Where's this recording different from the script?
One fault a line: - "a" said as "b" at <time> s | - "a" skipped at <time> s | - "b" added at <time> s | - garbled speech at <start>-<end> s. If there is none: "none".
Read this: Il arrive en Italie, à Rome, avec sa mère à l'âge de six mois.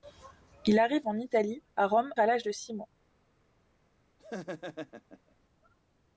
- "avec sa mère" skipped at 2.1 s